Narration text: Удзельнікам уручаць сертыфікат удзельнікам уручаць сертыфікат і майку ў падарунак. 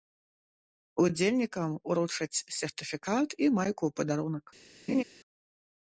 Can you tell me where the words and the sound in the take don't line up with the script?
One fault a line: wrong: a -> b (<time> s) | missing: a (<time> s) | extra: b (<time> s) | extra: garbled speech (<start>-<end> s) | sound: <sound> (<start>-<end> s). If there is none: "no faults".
missing: удзельнікам уручаць сертыфікат (3.3 s)
sound: laugh (4.9-5.0 s)